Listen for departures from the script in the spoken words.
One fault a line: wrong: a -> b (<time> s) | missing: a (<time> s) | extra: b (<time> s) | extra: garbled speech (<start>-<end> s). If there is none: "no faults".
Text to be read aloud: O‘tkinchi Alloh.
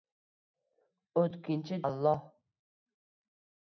no faults